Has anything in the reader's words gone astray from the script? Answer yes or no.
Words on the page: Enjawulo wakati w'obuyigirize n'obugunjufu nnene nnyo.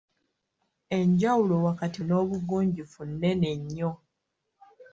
yes